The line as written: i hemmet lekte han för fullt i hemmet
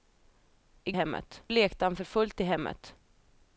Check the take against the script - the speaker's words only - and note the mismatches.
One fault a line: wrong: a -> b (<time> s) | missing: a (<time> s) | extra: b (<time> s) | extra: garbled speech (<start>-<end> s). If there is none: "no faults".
no faults